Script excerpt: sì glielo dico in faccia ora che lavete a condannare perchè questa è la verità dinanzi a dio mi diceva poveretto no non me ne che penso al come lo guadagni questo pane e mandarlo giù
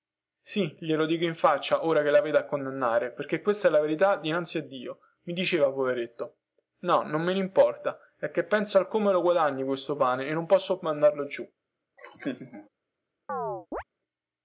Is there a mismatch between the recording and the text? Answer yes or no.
yes